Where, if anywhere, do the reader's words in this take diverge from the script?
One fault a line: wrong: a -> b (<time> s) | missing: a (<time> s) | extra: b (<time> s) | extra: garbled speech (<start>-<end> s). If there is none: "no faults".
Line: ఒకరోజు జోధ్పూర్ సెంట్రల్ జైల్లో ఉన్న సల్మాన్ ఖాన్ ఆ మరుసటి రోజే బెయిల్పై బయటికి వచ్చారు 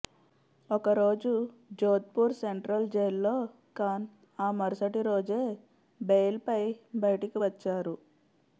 missing: ఉన్న సల్మాన్ (3.4 s)